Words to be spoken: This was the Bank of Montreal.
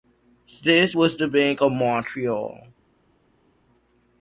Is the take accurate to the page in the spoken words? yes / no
yes